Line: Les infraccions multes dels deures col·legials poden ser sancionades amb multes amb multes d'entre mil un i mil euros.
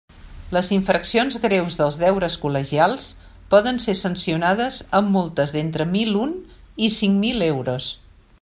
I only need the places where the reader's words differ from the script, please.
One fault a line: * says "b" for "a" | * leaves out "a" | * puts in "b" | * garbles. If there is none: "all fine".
* says "greus" for "multes"
* leaves out "amb multes"
* puts in "cinc"